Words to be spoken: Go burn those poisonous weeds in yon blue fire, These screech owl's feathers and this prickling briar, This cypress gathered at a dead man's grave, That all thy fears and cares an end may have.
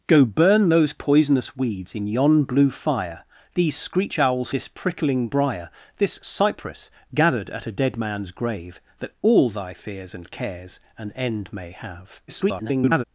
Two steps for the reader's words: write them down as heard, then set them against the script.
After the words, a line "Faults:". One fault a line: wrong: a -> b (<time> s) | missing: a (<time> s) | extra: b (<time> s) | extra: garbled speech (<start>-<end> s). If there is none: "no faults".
Go burn those poisonous weeds in yon blue fire, These screech owl's this prickling briar, This cypress gathered at a dead man's grave, That all thy fears and cares an end may have. [garbled]
Faults:
missing: feathers and (4.5 s)
extra: garbled speech (12.3-13.0 s)